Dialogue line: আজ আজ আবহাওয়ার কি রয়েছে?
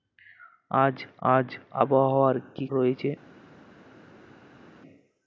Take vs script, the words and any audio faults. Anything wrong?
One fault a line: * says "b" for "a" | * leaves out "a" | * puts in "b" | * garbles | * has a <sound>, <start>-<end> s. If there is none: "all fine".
all fine